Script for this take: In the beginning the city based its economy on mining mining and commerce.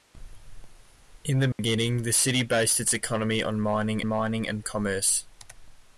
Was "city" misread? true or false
false